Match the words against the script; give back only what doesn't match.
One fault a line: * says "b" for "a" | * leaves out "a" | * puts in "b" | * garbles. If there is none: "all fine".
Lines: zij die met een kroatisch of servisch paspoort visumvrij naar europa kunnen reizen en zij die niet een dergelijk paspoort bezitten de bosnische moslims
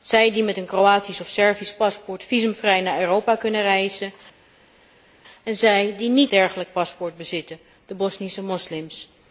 * leaves out "een"